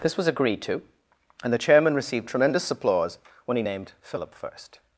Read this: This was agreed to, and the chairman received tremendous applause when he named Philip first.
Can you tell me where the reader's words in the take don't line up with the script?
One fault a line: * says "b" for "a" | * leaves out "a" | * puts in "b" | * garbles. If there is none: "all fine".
all fine